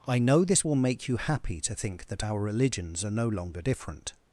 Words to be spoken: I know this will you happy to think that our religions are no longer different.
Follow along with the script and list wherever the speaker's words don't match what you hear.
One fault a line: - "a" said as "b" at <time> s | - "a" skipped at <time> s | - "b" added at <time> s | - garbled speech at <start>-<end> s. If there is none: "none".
- "make" added at 0.8 s